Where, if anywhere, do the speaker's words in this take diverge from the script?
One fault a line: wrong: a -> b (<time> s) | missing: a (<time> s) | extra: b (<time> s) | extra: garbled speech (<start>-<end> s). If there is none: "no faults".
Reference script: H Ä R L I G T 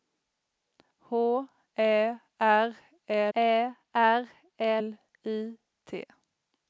extra: Ä R (3.3 s)
missing: G (5.6 s)